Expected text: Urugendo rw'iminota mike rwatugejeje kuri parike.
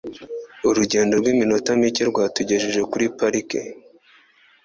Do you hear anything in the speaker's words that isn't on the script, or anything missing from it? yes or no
no